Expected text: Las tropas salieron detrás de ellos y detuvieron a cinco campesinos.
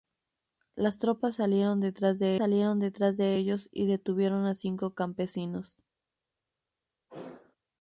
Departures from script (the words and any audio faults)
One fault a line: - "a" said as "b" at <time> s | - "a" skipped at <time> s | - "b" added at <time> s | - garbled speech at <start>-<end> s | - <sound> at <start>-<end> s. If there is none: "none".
- "salieron detrás de" added at 2.4 s
- sneeze at 7.1-7.6 s